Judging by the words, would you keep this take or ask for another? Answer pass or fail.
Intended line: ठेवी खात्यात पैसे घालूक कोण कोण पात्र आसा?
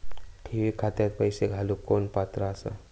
fail